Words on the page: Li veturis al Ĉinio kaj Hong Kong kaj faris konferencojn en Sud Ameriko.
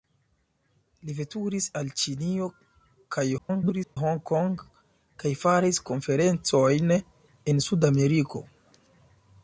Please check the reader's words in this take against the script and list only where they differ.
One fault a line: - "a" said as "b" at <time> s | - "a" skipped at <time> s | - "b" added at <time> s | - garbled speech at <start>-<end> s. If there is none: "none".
- garbled speech at 3.4-4.0 s